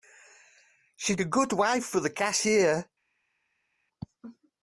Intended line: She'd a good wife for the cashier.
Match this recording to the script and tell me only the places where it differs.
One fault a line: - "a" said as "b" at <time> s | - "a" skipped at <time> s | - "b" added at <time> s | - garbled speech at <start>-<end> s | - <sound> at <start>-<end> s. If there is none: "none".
none